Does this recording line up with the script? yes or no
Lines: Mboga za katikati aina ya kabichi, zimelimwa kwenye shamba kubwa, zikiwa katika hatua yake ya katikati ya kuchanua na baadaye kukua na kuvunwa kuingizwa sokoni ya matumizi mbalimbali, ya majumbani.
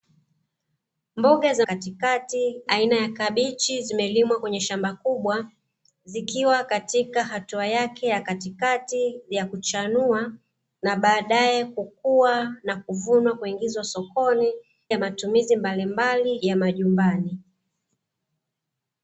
yes